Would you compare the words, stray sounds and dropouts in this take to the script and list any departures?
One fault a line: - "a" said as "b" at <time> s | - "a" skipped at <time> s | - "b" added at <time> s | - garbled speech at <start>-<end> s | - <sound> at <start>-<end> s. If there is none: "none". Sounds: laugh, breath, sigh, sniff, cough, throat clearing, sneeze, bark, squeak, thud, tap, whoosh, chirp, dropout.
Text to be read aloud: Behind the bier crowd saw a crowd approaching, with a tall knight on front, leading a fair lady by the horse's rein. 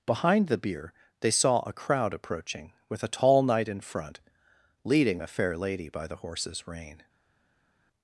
- "crowd" said as "they" at 1.2 s
- "on" said as "in" at 3.7 s